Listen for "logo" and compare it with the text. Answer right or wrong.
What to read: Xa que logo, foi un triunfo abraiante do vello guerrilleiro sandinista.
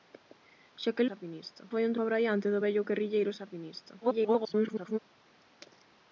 wrong